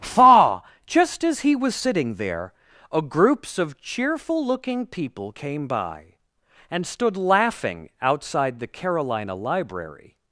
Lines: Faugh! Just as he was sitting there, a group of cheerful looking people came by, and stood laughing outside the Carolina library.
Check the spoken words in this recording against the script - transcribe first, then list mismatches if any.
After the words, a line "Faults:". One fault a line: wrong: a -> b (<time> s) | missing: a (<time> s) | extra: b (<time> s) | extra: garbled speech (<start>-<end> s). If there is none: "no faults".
Faugh! Just as he was sitting there, a groups of cheerful looking people came by, and stood laughing outside the Carolina library.
Faults:
wrong: group -> groups (3.0 s)